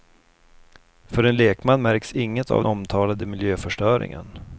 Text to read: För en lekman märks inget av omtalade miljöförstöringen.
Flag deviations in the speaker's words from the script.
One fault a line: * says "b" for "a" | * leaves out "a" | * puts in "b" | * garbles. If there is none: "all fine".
all fine